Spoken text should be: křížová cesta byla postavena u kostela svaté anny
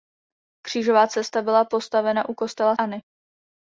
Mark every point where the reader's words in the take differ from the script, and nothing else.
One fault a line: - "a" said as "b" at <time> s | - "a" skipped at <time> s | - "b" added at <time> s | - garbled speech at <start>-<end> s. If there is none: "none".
- "svaté" skipped at 2.8 s